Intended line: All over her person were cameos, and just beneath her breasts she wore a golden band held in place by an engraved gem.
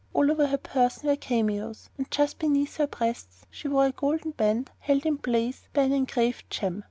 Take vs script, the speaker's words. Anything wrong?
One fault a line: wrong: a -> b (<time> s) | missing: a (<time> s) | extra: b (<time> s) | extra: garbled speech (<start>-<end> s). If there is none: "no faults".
no faults